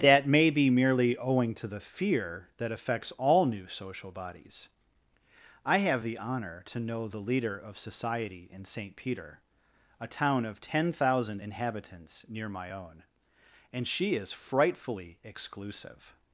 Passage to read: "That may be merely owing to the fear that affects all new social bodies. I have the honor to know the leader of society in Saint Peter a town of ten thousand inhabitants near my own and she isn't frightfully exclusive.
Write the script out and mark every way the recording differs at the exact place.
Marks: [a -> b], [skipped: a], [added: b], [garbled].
"That may be merely owing to the fear that affects all new social bodies. I have the honor to know the leader of society in Saint Peter a town of ten thousand inhabitants near my own and she [isn't -> is] frightfully exclusive.